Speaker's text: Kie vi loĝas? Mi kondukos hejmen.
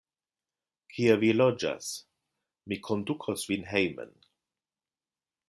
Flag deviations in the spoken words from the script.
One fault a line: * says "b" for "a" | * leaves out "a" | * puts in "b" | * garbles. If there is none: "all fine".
* puts in "vin"